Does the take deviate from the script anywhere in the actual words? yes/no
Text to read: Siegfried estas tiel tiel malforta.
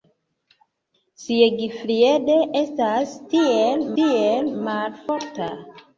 no